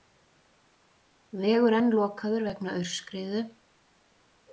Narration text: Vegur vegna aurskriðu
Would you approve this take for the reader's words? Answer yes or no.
no